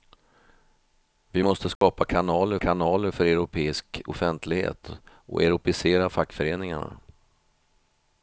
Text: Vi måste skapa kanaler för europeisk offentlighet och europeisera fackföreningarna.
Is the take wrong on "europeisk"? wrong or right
right